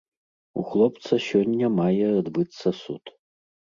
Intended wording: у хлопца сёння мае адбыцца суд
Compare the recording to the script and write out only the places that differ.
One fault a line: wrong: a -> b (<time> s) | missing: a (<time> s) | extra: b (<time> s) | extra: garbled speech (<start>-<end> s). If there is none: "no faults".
no faults